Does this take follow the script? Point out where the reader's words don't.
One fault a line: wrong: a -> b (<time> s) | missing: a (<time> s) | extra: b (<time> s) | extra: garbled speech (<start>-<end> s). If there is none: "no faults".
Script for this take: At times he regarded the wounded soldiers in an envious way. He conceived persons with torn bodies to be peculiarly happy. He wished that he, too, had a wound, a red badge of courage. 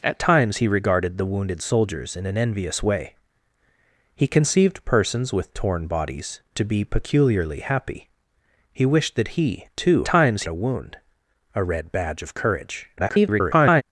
wrong: had -> times (10.0 s)
extra: garbled speech (13.0-13.8 s)